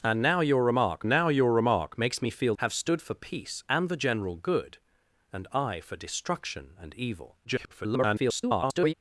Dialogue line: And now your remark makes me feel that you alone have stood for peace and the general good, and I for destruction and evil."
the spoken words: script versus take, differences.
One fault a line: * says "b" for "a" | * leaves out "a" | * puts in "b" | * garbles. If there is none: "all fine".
* puts in "now your remark"
* leaves out "that you alone"
* garbles